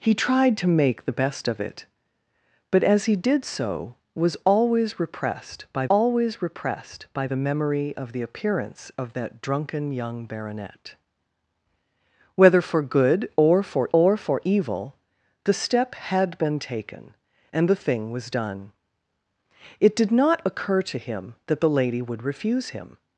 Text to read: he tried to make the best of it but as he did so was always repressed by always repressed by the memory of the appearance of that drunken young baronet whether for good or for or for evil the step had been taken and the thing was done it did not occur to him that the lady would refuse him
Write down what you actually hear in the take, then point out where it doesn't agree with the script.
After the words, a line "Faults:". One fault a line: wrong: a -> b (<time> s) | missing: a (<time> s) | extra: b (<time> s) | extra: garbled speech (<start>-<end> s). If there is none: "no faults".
he tried to make the best of it but as he did so was always repressed by always repressed by the memory of the appearance of that drunken young baronet whether for good or for or for evil the step had been taken and the thing was done it did not occur to him that the lady would refuse him
Faults:
no faults